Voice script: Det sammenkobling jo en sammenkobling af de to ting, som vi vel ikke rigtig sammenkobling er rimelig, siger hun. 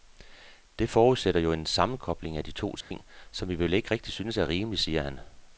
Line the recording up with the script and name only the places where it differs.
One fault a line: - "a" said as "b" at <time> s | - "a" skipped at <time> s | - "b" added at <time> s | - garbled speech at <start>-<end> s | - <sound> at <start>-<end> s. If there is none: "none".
- "sammenkobling" said as "forudsætter" at 0.9 s
- dropout at 2.8-2.9 s
- "sammenkobling" said as "synes" at 4.1 s
- "hun" said as "han" at 5.0 s